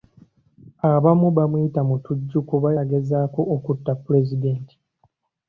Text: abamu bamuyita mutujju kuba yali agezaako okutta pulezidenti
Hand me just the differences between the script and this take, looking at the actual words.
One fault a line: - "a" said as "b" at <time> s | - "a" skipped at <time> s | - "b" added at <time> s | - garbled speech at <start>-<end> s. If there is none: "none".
- "yali" skipped at 2.7 s